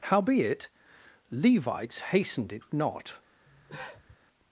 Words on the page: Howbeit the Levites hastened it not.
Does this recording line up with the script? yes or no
no